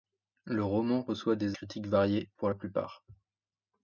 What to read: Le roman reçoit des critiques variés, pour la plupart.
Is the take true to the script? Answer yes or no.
yes